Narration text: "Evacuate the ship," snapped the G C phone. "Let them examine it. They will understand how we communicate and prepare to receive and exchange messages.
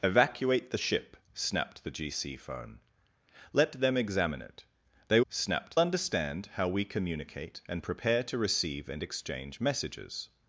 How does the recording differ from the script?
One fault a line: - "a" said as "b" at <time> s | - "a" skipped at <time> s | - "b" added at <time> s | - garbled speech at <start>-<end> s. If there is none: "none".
- "will" said as "snapped" at 5.3 s